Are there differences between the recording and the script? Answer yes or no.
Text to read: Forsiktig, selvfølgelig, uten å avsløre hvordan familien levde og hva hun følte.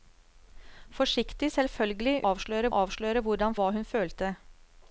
yes